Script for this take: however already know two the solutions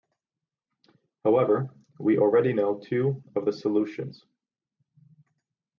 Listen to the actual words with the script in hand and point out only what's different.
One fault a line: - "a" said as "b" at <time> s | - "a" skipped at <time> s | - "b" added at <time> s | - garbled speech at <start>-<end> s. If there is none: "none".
- "we" added at 2.0 s
- "of" added at 3.4 s